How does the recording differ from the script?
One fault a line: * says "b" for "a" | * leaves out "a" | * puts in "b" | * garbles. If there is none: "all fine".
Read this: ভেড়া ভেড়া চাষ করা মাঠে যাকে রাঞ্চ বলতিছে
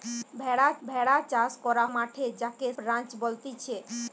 all fine